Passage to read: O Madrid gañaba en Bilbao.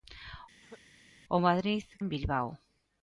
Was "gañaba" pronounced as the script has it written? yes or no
no